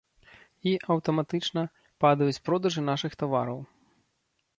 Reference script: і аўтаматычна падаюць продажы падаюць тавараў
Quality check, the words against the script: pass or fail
fail